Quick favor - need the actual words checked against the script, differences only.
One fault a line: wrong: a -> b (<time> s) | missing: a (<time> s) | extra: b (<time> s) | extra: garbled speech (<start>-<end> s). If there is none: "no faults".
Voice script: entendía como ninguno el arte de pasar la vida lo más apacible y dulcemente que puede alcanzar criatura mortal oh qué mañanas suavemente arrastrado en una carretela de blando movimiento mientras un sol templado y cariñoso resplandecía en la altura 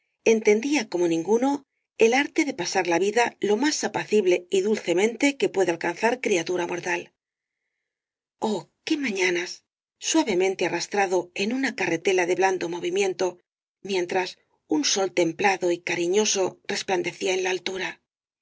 no faults